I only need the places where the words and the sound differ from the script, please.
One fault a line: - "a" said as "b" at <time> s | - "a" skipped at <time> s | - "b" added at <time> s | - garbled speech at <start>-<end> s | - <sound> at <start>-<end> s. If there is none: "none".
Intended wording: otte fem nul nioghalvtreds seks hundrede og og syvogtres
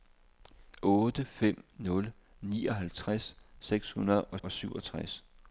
none